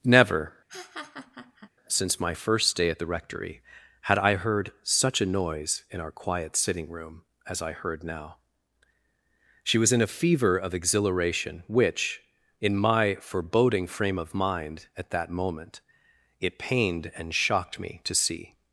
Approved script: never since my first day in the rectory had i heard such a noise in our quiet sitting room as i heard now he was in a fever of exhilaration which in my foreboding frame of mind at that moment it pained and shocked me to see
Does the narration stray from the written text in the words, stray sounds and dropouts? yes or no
yes